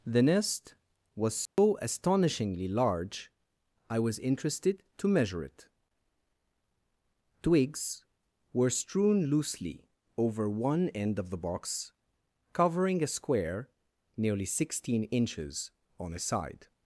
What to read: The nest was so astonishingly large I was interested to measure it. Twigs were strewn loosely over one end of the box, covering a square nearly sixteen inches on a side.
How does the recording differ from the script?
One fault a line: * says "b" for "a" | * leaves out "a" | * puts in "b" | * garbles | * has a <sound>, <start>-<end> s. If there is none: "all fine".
* has a dropout, 1.5-1.6 s